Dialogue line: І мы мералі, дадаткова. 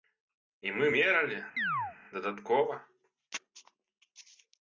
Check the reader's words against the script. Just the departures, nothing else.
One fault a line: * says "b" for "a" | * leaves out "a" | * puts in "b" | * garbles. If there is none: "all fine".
all fine